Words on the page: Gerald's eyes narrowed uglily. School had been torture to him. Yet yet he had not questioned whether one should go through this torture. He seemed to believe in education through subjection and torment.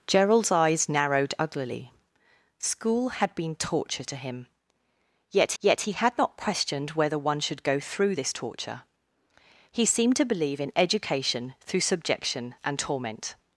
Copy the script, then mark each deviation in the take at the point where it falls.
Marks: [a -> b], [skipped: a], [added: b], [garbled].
Gerald's eyes narrowed uglily. School had been torture to him. Yet yet he had not questioned whether one should go through this torture. He seemed to believe in education through subjection and torment.